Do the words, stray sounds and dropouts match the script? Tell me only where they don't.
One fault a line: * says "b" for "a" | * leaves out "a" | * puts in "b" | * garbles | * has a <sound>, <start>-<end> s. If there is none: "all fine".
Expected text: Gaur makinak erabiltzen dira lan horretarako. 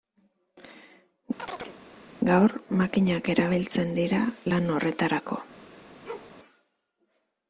* has a chirp, 1.4-1.8 s
* has a bark, 6.1-6.4 s